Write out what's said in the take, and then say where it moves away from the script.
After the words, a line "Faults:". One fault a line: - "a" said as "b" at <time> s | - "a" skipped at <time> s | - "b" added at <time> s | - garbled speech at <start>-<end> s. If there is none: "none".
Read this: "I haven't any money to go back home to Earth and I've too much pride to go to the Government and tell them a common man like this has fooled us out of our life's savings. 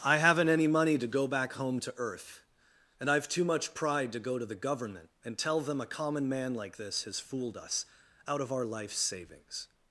"I haven't any money to go back home to Earth and I've too much pride to go to the Government and tell them a common man like this has fooled us out of our life's savings.
Faults:
none